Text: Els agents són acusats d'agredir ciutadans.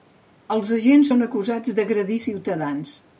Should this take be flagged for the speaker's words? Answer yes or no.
no